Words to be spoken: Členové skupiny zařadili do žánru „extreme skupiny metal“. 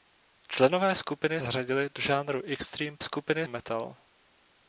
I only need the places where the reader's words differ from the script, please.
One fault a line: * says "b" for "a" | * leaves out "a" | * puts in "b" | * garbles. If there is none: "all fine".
all fine